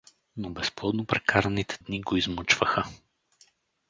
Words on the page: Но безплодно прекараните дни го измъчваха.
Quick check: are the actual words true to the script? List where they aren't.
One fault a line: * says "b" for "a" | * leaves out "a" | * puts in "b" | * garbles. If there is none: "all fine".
all fine